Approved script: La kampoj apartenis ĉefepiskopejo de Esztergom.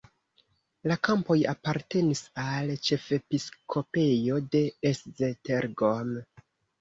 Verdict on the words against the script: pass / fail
fail